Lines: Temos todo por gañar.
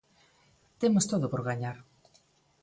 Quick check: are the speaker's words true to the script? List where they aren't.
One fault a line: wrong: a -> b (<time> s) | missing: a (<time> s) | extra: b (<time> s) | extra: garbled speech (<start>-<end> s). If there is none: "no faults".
no faults